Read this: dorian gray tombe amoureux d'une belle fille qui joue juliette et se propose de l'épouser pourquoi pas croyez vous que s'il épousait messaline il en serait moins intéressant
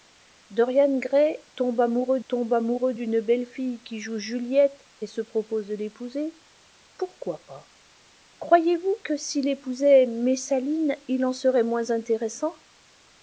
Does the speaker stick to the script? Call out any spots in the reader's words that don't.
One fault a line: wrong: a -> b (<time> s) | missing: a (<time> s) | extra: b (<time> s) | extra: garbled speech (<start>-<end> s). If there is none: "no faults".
extra: tombe amoureux (2.3 s)